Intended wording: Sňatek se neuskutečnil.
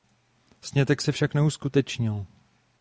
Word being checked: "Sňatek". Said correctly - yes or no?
yes